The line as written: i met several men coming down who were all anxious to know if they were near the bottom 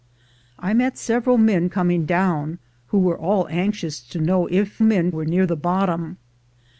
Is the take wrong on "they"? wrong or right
wrong